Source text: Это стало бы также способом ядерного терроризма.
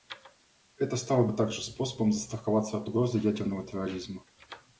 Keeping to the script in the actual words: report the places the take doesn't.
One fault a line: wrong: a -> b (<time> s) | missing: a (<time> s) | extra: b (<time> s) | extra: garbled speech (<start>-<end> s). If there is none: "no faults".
extra: застраховаться от угрозы (2.1 s)